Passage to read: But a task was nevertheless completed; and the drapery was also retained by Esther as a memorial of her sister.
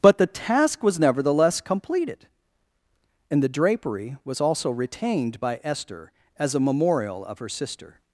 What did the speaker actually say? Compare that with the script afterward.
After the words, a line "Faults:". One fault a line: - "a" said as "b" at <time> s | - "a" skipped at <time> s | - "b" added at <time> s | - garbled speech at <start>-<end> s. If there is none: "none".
But the task was nevertheless completed; and the drapery was also retained by Esther as a memorial of her sister.
Faults:
- "a" said as "the" at 0.2 s